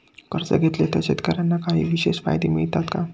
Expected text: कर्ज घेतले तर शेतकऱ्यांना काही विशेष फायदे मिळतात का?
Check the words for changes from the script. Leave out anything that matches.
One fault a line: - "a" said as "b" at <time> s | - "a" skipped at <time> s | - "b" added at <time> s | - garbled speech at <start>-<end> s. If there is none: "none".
none